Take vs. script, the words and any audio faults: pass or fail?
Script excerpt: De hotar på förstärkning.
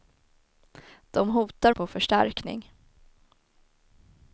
pass